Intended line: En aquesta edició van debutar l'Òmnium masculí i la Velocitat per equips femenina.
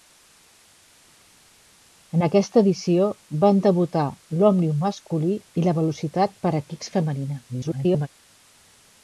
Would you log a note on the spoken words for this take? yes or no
yes